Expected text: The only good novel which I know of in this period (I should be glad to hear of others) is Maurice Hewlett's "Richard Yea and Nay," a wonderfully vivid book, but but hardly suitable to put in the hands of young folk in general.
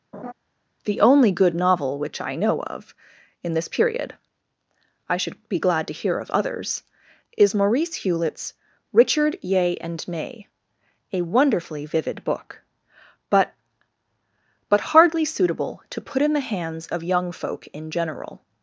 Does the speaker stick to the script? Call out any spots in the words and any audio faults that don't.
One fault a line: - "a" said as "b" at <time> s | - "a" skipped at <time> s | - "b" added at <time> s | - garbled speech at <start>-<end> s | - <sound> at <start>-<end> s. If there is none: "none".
- laugh at 0.1-0.3 s